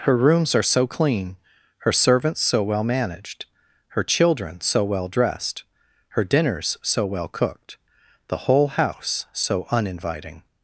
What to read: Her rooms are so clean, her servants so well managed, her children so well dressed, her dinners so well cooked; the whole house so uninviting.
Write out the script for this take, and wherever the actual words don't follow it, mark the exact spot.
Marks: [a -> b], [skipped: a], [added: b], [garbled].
Her rooms are so clean, her servants so well managed, her children so well dressed, her dinners so well cooked; the whole house so uninviting.